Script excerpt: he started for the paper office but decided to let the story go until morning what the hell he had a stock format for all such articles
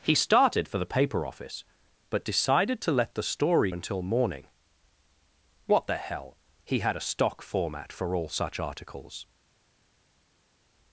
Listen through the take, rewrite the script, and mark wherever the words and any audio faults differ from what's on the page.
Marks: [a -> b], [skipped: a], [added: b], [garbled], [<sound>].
he started for the paper office but decided to let the story [skipped: go] until morning what the hell he had a stock format for all such articles